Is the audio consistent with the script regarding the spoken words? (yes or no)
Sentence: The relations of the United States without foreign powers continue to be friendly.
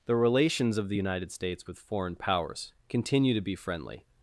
no